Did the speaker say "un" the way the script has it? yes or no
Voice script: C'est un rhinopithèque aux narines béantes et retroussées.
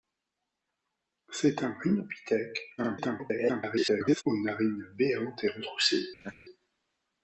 yes